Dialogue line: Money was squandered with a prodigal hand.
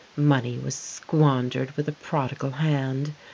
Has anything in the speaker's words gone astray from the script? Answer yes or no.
no